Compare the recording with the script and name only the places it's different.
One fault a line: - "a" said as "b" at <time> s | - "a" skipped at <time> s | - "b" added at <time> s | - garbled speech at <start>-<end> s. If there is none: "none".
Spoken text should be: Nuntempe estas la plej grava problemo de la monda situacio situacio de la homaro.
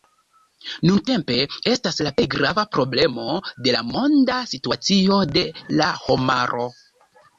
- "situacio" skipped at 5.2 s